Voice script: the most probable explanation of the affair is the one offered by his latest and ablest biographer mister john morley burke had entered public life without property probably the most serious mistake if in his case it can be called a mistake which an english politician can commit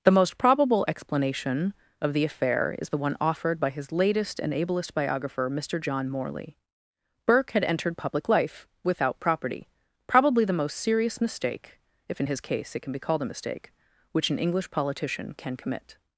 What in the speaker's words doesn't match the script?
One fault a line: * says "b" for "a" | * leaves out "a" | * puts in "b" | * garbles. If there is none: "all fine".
all fine